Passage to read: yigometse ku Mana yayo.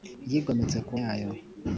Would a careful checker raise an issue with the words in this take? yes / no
yes